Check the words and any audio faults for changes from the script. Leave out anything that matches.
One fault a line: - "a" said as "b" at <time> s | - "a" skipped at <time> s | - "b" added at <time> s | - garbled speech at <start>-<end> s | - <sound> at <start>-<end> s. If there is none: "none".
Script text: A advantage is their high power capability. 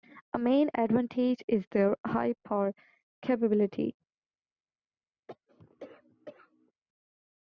- "main" added at 0.4 s
- cough at 5.3-6.7 s